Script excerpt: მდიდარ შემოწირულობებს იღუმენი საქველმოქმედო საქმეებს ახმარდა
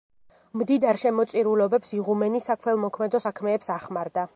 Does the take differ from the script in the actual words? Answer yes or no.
no